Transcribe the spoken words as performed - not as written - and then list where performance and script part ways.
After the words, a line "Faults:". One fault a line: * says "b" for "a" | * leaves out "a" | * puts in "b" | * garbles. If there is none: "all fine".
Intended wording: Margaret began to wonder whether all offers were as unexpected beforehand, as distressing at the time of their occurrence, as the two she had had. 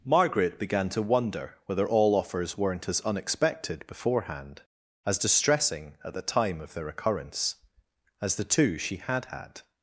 Margaret began to wonder whether all offers weren't as unexpected beforehand, as distressing at the time of their occurrence, as the two she had had.
Faults:
* says "weren't" for "were"